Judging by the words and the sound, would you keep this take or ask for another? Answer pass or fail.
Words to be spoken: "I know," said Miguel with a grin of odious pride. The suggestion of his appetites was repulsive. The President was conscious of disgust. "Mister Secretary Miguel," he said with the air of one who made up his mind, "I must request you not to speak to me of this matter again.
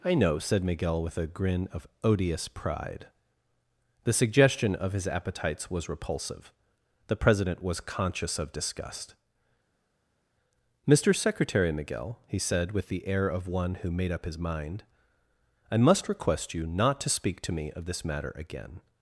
pass